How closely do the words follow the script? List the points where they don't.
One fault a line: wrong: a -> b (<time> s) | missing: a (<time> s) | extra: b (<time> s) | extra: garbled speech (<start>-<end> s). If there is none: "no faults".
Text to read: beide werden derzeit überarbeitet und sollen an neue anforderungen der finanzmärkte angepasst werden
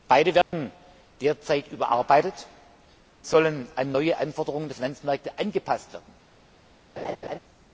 missing: und (2.5 s)